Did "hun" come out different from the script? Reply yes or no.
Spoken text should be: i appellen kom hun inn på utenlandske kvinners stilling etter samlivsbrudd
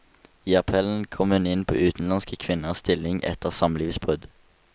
no